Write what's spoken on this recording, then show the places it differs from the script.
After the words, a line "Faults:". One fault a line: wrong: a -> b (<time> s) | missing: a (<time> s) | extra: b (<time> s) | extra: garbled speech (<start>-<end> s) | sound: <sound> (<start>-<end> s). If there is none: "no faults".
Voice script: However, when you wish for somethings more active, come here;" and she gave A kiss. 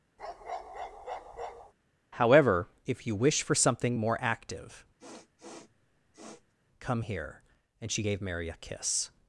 However, if you wish for something more active, come here;" and she gave Mary a kiss.
Faults:
sound: bark (0.2-1.7 s)
wrong: when -> if (2.9 s)
wrong: somethings -> something (3.6 s)
sound: sniff (5.0-6.5 s)
extra: Mary (8.2 s)